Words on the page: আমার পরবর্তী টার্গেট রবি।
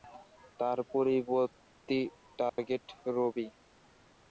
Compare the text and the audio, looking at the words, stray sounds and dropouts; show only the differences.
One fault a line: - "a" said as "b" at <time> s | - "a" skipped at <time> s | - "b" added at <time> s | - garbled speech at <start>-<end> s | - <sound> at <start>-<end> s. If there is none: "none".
- "আমার" said as "তার" at 0.6 s
- dropout at 2.5-2.6 s